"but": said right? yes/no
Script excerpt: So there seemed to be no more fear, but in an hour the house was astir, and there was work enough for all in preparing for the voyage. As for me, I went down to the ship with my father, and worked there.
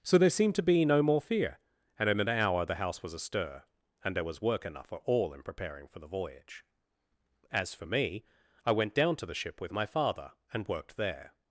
no